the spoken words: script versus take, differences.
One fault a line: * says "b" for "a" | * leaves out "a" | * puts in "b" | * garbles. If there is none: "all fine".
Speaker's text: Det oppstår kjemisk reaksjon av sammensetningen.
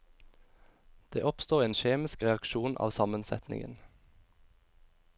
* puts in "en"